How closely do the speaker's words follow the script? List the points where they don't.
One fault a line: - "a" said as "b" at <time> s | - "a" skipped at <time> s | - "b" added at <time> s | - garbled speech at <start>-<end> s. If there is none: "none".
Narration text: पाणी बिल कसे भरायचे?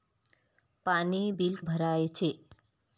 - "कसे" skipped at 1.5 s